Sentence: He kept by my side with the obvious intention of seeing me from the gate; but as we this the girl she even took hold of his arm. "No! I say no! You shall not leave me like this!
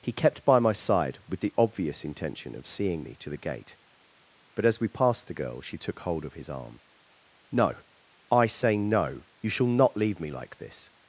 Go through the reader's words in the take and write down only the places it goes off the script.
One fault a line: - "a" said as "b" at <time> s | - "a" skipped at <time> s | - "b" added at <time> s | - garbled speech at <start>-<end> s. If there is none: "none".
- "from" said as "to" at 3.1 s
- "this" said as "passed" at 4.9 s
- "even" skipped at 5.8 s